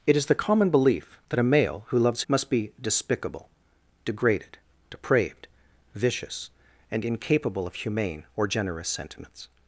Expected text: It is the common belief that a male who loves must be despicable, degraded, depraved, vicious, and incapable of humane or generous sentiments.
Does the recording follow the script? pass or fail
pass